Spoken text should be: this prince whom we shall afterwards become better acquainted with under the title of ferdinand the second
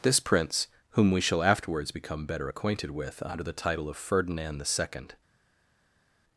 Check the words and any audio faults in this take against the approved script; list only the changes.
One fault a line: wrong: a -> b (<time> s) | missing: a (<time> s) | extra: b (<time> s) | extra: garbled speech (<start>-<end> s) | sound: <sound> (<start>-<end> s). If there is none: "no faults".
no faults